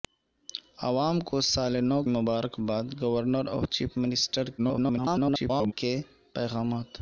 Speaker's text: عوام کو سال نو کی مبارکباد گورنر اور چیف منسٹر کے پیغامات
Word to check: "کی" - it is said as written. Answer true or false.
false